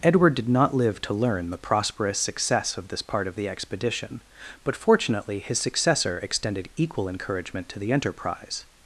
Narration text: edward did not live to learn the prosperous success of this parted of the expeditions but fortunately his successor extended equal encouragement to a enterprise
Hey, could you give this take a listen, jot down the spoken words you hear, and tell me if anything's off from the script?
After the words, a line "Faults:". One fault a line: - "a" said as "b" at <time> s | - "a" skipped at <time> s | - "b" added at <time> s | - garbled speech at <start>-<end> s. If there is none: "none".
edward did not live to learn the prosperous success of this part of the expedition but fortunately his successor extended equal encouragement to the enterprise
Faults:
- "parted" said as "part" at 3.0 s
- "expeditions" said as "expedition" at 3.5 s
- "a" said as "the" at 7.8 s